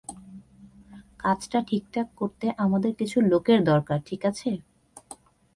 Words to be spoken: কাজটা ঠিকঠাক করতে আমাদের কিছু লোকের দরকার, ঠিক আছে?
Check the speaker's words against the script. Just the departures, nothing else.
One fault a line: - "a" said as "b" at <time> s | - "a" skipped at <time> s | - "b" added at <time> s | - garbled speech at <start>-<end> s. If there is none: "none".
none